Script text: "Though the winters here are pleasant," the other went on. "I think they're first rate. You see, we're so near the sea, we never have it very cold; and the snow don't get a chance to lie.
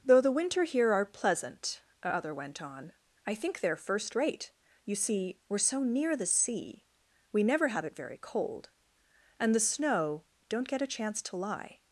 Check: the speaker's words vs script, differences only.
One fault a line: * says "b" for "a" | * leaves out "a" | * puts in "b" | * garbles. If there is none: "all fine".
* says "winter" for "winters"
* says "a" for "the"